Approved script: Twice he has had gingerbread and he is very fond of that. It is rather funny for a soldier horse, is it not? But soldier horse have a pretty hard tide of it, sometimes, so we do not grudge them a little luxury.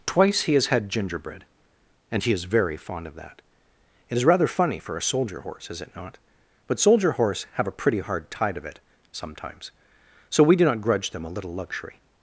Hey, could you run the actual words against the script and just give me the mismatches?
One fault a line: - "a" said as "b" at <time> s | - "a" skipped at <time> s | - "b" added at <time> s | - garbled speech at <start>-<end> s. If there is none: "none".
none